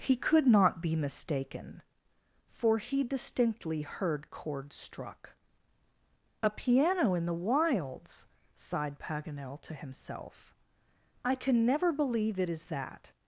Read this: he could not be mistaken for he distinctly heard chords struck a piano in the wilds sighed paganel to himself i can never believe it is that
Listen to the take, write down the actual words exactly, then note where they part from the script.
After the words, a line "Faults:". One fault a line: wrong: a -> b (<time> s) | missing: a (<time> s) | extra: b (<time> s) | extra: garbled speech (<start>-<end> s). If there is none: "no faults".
he could not be mistaken for he distinctly heard chords struck a piano in the wilds sighed paganel to himself i can never believe it is that
Faults:
no faults